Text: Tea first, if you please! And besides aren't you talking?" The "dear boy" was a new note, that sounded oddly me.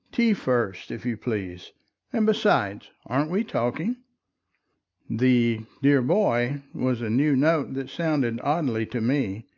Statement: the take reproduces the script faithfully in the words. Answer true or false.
false